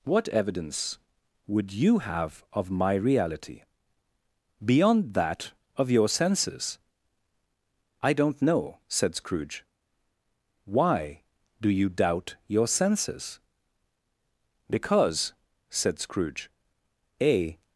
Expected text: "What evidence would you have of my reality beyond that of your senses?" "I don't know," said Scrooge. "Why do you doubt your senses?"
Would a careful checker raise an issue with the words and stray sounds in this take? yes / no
yes